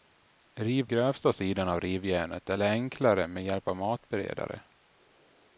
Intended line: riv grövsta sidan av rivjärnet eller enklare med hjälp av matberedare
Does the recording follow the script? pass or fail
pass